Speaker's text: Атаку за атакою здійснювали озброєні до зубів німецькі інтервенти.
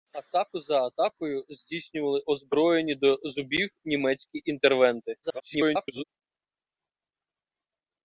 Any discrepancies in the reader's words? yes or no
yes